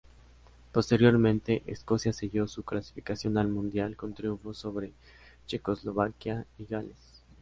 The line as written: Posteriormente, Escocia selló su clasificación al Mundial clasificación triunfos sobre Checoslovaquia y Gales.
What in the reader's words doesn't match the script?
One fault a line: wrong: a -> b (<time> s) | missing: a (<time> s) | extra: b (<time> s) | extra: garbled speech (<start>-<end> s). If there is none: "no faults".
wrong: clasificación -> con (4.0 s)